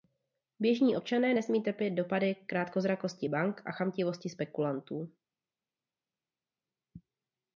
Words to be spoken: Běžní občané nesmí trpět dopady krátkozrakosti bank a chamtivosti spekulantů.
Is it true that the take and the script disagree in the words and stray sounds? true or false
false